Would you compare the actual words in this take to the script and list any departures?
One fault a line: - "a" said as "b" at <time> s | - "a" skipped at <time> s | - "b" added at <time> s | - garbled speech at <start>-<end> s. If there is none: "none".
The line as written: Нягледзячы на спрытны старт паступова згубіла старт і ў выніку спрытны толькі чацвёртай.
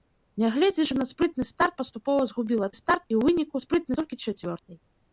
none